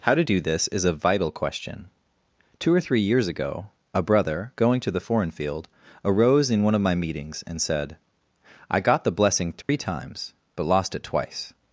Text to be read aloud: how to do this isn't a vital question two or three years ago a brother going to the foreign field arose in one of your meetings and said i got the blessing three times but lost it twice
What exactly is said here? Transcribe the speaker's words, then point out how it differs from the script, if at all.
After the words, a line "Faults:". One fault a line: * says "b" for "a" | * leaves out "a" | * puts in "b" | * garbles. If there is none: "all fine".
how to do this is a vital question two or three years ago a brother going to the foreign field arose in one of my meetings and said i got the blessing three times but lost it twice
Faults:
* says "is" for "isn't"
* says "my" for "your"